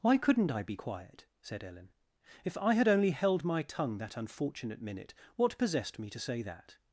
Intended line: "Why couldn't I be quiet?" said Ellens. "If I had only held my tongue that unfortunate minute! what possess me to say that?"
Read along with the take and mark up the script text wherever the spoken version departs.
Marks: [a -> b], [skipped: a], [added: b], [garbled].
"Why couldn't I be quiet?" said [Ellens. -> Ellen] "If I had only held my tongue that unfortunate minute! what [possess -> possessed] me to say that?"